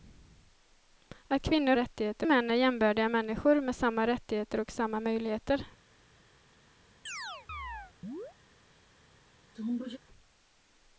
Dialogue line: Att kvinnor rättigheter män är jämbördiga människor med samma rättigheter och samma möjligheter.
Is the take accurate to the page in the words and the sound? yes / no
no